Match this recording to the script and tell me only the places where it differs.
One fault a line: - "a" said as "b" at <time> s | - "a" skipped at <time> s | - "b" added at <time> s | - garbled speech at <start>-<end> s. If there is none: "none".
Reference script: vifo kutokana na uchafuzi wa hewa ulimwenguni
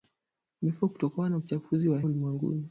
- "hewa" skipped at 2.0 s